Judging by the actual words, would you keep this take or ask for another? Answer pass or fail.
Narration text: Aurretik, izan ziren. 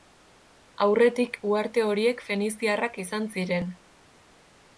fail